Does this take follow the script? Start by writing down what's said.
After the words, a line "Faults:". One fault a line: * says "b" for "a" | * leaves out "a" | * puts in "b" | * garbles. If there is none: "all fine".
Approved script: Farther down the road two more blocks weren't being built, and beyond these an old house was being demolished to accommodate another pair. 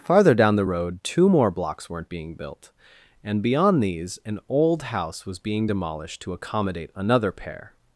Farther down the road two more blocks weren't being built, and beyond these an old house was being demolished to accommodate another pair.
Faults:
all fine